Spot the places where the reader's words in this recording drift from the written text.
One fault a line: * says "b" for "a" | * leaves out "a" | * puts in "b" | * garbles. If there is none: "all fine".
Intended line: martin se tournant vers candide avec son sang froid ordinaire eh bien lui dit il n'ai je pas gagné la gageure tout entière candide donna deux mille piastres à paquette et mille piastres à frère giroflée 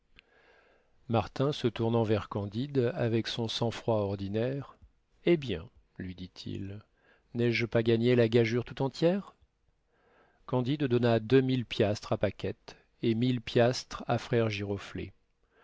all fine